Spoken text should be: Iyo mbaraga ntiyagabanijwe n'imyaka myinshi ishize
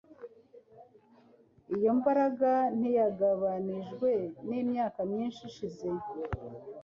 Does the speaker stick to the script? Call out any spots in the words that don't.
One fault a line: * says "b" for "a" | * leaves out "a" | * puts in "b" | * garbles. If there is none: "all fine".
all fine